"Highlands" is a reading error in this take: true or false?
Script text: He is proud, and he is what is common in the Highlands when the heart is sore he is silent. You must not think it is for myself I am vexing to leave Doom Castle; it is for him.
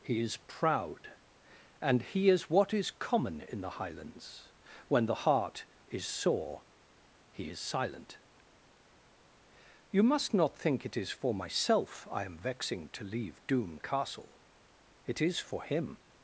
false